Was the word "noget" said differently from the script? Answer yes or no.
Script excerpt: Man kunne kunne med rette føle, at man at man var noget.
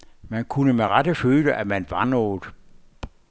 no